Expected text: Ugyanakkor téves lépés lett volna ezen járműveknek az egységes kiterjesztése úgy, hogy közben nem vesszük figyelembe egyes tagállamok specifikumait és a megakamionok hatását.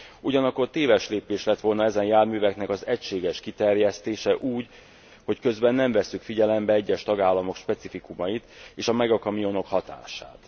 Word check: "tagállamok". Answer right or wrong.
right